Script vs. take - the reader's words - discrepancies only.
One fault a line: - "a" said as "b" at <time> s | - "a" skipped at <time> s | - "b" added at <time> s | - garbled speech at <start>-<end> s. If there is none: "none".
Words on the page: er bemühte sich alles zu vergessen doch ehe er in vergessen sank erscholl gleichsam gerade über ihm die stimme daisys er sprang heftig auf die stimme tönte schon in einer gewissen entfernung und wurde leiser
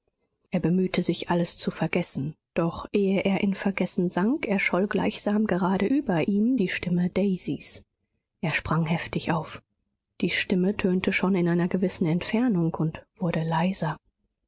none